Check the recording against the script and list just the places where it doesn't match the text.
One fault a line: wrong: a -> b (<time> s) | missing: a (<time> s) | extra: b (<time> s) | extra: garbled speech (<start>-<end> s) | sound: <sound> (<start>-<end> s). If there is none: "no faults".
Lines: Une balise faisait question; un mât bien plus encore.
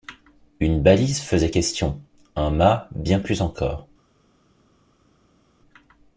no faults